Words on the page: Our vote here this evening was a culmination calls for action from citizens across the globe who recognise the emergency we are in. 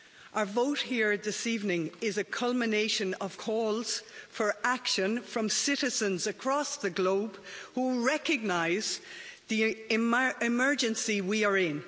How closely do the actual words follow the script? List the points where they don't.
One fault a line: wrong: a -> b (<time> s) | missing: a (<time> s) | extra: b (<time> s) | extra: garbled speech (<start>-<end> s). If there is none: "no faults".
wrong: was -> is (2.0 s)
extra: of (3.1 s)